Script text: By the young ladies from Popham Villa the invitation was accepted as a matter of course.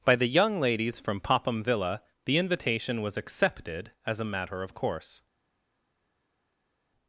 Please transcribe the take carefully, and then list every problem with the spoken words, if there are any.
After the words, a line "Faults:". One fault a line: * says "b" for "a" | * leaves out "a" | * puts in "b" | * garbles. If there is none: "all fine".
By the young ladies from Popham Villa the invitation was accepted as a matter of course.
Faults:
all fine